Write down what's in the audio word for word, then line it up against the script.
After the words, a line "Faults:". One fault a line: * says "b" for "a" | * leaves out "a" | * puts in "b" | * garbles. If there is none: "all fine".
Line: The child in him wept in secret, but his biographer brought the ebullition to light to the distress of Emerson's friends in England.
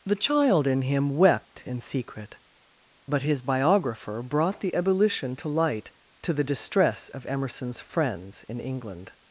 The child in him wept in secret, but his biographer brought the ebullition to light to the distress of Emerson's friends in England.
Faults:
all fine